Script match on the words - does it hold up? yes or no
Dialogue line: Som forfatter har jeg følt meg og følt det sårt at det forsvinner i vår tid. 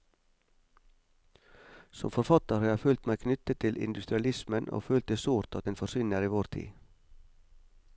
no